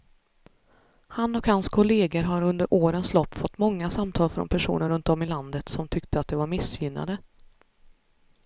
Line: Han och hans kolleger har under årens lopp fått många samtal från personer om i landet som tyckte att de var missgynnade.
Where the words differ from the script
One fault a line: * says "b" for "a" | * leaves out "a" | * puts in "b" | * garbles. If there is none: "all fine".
* puts in "runt"